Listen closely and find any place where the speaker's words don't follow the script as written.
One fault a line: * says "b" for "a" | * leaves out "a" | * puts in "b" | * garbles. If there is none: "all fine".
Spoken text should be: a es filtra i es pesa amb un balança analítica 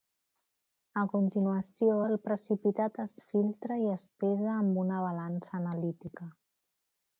* puts in "continuació el precipitat"
* says "una" for "un"